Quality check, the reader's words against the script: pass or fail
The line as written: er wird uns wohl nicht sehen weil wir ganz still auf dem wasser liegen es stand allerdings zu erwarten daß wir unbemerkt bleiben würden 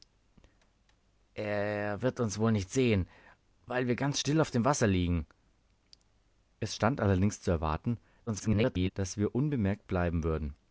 fail